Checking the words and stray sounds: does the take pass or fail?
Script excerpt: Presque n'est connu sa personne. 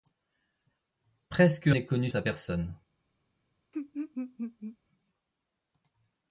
fail